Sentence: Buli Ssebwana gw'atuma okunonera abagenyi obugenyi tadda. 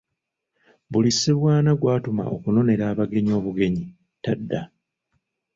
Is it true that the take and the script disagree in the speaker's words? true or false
false